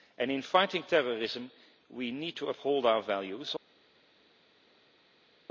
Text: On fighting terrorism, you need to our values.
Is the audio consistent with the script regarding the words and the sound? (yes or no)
no